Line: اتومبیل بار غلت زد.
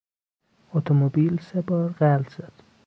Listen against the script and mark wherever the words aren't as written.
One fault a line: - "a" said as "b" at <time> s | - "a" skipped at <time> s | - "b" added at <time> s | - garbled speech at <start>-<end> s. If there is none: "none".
- "سه" added at 1.5 s